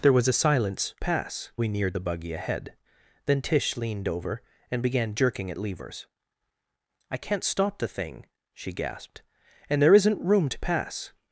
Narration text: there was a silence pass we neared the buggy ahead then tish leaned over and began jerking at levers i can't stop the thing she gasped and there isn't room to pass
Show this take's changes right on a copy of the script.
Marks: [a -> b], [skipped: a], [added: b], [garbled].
there was a silence pass we neared the buggy ahead then tish leaned over and began jerking at levers i can't stop the thing she gasped and there isn't room to pass